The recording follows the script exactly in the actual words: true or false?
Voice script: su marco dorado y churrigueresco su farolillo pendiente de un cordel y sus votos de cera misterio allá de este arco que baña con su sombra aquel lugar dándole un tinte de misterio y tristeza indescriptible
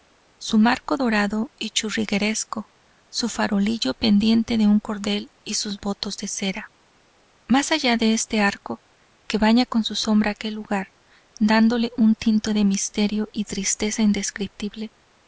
false